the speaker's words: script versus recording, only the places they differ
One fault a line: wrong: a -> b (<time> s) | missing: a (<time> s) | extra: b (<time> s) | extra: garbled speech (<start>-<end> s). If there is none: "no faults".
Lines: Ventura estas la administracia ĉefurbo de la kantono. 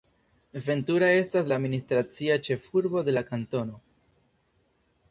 no faults